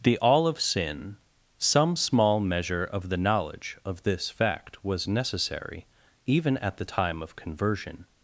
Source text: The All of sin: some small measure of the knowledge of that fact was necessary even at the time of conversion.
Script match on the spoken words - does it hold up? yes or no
no